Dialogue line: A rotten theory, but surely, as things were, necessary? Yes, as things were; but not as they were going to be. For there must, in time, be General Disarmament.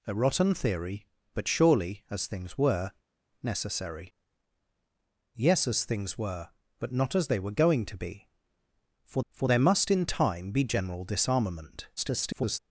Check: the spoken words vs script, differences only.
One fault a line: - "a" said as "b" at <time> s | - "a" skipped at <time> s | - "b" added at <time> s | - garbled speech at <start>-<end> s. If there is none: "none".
- "for" added at 9.3 s
- garbled speech at 12.0-12.6 s